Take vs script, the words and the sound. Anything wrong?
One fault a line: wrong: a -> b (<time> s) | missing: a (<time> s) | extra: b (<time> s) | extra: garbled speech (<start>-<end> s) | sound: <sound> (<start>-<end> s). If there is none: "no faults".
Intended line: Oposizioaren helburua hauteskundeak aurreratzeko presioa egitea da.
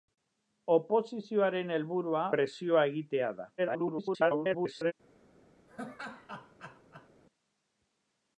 missing: hauteskundeak aurreratzeko (2.2 s)
extra: garbled speech (3.6-4.9 s)
sound: laugh (5.7-7.1 s)